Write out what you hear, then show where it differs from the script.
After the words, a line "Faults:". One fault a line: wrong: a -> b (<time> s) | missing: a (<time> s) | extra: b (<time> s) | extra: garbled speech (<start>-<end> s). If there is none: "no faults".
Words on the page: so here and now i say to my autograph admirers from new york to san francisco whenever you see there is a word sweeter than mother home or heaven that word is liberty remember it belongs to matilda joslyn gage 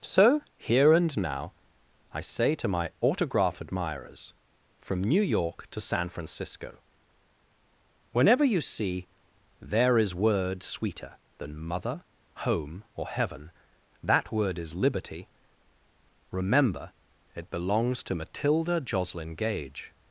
so here and now i say to my autograph admirers from new york to san francisco whenever you see there is word sweeter than mother home or heaven that word is liberty remember it belongs to matilda joslyn gage
Faults:
missing: a (10.2 s)